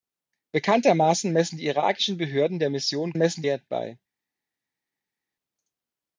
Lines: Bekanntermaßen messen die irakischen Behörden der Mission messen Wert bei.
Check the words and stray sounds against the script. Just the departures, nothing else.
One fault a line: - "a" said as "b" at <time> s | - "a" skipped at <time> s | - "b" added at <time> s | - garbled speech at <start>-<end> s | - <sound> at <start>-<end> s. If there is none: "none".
none